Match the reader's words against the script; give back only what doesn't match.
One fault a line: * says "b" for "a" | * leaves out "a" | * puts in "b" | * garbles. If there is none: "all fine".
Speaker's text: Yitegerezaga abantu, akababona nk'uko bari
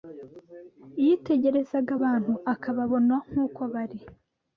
all fine